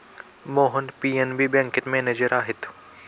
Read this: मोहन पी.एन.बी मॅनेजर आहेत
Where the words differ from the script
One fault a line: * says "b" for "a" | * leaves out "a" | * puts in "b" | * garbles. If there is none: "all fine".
* puts in "बँकेत"